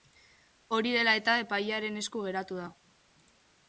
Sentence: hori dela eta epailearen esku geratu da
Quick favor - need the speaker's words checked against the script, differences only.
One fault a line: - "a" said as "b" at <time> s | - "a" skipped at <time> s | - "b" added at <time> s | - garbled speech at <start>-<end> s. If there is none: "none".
none